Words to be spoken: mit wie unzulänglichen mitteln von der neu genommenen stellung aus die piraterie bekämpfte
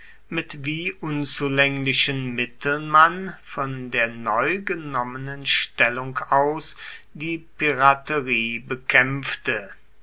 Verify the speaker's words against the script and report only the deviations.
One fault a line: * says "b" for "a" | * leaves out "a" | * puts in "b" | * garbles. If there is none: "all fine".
* puts in "man"